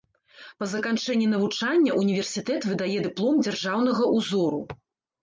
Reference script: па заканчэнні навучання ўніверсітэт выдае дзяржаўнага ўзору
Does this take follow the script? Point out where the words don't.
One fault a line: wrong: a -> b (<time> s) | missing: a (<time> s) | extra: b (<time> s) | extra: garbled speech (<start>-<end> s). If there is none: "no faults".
extra: дыплом (3.1 s)